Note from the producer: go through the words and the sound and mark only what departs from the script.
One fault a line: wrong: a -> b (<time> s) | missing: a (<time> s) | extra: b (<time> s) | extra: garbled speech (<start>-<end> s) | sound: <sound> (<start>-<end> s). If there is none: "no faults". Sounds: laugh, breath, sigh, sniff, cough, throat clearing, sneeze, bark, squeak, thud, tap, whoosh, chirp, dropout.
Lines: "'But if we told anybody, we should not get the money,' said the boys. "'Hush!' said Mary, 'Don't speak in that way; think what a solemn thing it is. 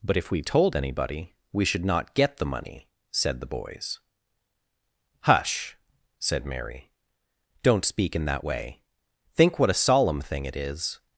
no faults